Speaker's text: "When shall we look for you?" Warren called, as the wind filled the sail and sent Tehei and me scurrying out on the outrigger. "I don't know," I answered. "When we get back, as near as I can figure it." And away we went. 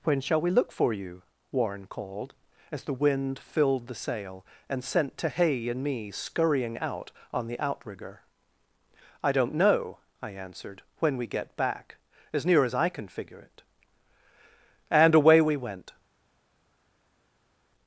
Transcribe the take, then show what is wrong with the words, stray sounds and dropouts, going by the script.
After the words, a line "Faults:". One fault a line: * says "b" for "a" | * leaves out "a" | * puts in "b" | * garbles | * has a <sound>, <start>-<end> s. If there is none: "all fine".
"When shall we look for you?" Warren called, as the wind filled the sail and sent Tehei and me scurrying out on the outrigger. "I don't know," I answered. "When we get back, as near as I can figure it." And away we went.
Faults:
all fine